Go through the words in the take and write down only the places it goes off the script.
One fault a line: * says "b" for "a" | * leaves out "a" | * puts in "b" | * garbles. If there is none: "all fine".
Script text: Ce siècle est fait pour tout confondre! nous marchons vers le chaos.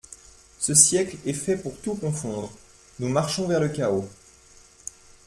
all fine